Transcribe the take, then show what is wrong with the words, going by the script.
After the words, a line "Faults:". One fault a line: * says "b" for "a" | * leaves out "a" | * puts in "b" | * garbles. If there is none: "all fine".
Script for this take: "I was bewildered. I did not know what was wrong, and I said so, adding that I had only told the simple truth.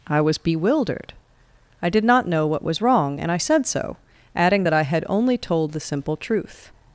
"I was bewildered. I did not know what was wrong, and I said so, adding that I had only told the simple truth.
Faults:
all fine